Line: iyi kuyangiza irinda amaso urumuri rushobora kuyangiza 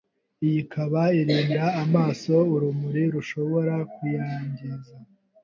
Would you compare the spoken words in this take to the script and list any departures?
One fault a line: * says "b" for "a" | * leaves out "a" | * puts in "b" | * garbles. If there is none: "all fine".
* says "ikaba" for "kuyangiza"